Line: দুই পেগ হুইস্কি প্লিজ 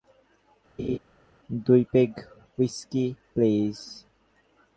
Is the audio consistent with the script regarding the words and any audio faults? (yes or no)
no